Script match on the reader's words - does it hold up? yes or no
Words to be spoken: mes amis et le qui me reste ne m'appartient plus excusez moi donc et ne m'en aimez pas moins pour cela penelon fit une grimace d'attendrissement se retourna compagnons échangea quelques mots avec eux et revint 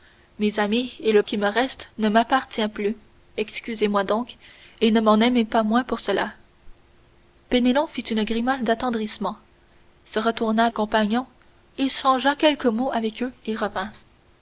yes